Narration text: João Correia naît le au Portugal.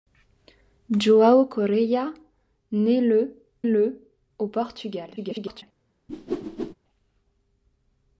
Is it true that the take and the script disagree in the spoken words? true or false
true